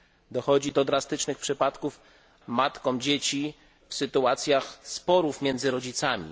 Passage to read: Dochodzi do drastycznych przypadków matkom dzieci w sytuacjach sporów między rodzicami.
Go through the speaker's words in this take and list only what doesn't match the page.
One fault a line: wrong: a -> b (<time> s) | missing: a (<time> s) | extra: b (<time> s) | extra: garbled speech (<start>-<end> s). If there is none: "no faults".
no faults